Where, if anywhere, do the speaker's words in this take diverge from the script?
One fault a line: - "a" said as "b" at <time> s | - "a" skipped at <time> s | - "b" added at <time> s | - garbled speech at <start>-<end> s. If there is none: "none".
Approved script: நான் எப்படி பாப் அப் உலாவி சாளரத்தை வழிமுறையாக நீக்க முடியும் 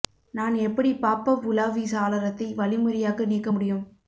none